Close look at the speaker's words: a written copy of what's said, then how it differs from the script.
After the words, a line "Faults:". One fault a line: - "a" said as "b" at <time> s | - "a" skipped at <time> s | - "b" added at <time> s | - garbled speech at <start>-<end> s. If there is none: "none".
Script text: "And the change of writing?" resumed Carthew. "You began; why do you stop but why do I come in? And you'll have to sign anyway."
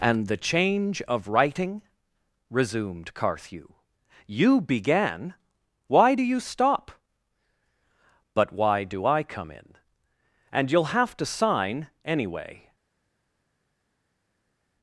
"And the change of writing?" resumed Carthew. "You began; why do you stop but why do I come in? And you'll have to sign anyway."
Faults:
none